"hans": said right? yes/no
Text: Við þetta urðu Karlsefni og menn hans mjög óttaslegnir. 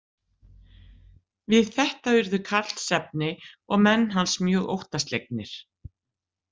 yes